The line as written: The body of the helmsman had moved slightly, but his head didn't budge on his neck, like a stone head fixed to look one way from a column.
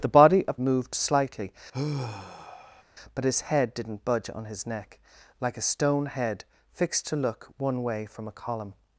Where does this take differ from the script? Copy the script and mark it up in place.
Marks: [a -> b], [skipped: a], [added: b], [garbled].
The body of [skipped: the helmsman had] moved slightly, but his head didn't budge on his neck, like a stone head fixed to look one way from a column.